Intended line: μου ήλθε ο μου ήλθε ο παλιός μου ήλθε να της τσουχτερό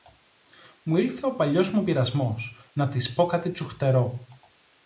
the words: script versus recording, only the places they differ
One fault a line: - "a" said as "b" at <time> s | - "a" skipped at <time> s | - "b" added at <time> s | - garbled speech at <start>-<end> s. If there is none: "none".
- "μου ήλθε ο" skipped at 1.4 s
- "ήλθε" said as "πειρασμός" at 1.8 s
- "πω κάτι" added at 3.1 s